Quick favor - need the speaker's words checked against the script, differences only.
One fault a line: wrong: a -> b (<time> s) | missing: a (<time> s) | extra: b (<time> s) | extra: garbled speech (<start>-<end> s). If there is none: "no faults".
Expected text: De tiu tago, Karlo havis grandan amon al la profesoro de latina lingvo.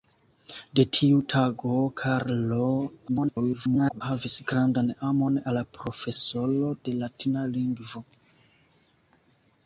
extra: garbled speech (3.1-4.0 s)